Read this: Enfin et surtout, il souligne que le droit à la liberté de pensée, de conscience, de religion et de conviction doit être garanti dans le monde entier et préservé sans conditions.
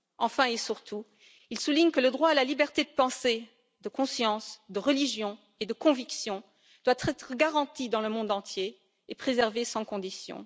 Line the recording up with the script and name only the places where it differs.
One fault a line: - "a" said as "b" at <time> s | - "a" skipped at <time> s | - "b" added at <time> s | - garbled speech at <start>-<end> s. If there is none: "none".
none